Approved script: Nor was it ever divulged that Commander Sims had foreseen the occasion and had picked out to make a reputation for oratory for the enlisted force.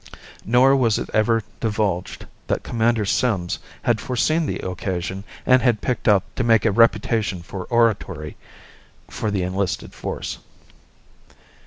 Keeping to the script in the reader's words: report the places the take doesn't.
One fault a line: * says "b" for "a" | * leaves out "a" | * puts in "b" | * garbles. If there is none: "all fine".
all fine